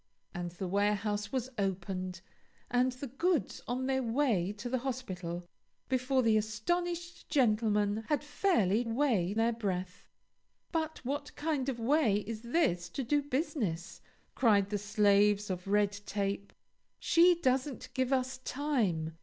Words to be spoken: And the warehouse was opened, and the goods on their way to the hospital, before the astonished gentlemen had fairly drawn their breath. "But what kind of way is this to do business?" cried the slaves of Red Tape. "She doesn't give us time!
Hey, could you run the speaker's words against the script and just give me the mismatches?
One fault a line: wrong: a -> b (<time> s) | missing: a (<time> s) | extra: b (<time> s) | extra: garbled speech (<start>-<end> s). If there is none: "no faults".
wrong: drawn -> way (8.8 s)